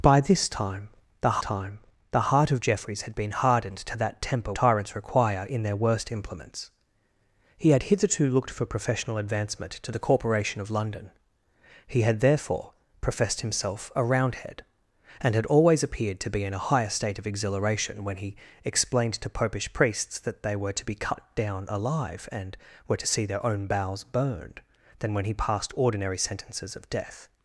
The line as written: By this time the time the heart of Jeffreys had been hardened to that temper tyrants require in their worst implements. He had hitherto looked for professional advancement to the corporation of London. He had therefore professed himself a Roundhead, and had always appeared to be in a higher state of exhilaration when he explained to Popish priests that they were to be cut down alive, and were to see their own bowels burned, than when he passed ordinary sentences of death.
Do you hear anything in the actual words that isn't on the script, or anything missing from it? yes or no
no